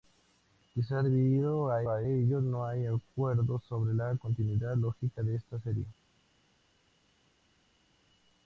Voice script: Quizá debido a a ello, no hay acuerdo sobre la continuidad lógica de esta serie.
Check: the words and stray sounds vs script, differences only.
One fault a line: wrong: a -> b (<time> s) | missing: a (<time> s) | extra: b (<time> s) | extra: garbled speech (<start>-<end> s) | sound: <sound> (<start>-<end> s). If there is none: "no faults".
no faults